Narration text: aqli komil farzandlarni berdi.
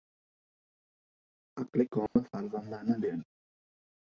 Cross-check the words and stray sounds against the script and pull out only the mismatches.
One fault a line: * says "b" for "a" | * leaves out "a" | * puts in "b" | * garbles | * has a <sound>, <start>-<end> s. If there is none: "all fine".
* has a dropout, 2.1-2.2 s